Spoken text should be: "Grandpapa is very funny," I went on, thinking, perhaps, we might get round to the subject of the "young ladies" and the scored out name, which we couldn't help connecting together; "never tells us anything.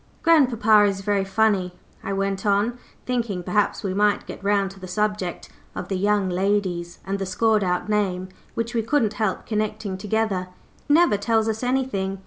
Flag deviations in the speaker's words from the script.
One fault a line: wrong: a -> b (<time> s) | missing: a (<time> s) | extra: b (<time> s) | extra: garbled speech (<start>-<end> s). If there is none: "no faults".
no faults